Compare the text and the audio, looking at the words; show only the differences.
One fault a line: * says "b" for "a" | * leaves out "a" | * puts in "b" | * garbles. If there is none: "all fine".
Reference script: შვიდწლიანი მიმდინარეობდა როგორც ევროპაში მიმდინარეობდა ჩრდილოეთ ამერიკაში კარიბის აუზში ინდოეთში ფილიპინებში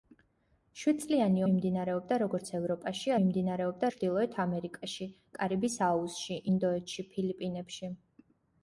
all fine